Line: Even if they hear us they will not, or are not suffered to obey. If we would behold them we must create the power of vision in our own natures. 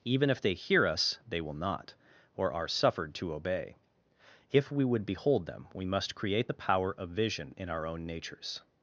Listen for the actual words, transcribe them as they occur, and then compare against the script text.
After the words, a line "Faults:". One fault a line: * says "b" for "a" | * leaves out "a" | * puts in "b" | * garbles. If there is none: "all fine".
Even if they hear us they will not, or are suffered to obey. If we would behold them we must create the power of vision in our own natures.
Faults:
* leaves out "not"